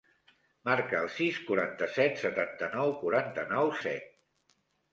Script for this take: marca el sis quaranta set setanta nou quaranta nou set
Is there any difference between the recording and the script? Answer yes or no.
no